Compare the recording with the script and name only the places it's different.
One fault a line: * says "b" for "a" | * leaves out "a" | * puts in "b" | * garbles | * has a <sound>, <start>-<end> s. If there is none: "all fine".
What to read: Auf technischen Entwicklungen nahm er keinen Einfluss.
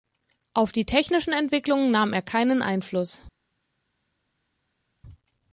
* puts in "die"